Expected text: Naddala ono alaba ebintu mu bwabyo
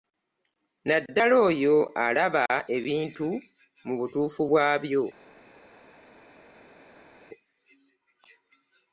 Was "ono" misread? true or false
true